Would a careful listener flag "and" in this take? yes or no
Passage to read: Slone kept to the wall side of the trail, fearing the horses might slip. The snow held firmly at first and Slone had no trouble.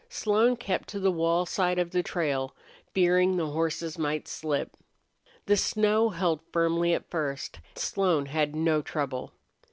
yes